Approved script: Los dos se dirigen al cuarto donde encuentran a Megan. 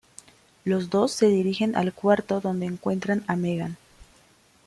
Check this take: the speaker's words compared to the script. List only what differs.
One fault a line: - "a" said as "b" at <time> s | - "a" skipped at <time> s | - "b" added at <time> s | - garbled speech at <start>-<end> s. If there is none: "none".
none